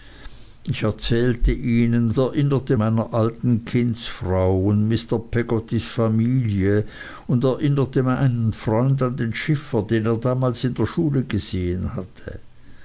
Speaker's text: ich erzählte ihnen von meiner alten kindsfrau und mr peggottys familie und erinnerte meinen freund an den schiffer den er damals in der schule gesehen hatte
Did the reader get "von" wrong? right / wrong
wrong